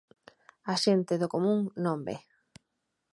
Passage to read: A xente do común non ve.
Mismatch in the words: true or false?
false